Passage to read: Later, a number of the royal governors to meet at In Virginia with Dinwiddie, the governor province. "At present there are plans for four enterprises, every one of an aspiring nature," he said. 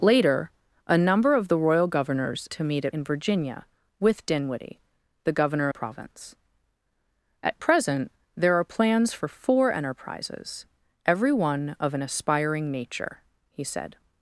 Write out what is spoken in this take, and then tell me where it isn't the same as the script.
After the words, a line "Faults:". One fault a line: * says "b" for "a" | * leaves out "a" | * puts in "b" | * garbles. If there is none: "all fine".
Later, a number of the royal governors to meet at In Virginia with Dinwiddie, the governor province. "At present there are plans for four enterprises, every one of an aspiring nature," he said.
Faults:
all fine